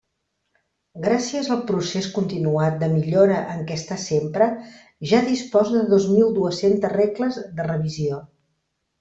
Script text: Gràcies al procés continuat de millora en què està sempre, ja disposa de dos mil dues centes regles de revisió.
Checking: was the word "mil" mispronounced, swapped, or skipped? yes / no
no